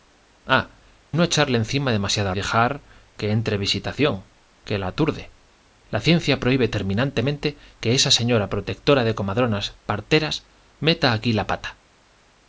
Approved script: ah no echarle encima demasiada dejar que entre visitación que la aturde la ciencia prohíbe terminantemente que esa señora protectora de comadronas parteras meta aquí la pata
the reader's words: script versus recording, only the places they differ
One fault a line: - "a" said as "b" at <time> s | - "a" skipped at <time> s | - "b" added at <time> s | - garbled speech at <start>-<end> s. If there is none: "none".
none